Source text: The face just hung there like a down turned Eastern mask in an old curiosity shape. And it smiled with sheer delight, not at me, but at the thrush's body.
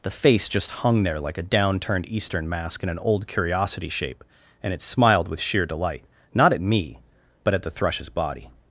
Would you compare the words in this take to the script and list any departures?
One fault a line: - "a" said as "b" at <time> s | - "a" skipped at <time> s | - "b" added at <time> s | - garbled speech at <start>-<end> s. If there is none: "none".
none